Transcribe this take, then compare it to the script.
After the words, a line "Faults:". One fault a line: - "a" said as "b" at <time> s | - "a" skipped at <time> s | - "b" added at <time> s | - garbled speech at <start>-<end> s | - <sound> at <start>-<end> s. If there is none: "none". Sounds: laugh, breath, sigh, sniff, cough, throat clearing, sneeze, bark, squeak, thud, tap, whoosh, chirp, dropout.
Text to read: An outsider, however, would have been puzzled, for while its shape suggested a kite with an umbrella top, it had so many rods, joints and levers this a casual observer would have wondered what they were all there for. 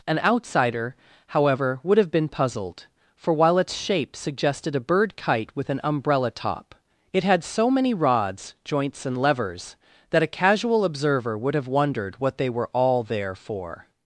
An outsider, however, would have been puzzled, for while its shape suggested a bird kite with an umbrella top, it had so many rods, joints and levers that a casual observer would have wondered what they were all there for.
Faults:
- "bird" added at 4.9 s
- "this" said as "that" at 10.1 s